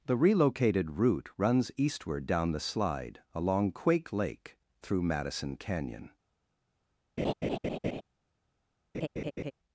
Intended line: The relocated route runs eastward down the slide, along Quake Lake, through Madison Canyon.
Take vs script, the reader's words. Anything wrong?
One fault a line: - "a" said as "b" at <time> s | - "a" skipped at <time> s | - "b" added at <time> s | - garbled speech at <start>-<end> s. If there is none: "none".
none